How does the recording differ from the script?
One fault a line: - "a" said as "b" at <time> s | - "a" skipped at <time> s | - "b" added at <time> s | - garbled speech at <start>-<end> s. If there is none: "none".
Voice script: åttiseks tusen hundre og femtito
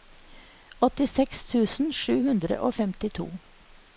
- "sju" added at 2.0 s